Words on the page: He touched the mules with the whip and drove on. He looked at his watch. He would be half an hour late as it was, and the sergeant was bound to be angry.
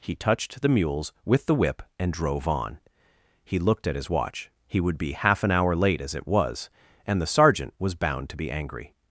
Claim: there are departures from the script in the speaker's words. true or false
false